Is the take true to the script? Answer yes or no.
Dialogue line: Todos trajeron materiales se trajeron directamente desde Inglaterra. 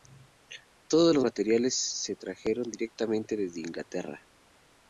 no